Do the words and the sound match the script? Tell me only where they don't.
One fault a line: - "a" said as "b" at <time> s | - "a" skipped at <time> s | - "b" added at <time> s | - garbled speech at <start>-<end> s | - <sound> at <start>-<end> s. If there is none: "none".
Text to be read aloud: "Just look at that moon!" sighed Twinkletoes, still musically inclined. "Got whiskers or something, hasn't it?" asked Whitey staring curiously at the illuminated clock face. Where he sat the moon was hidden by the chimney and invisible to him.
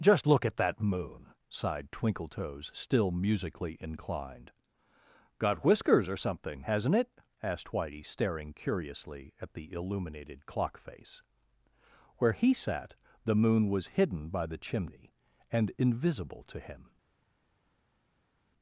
none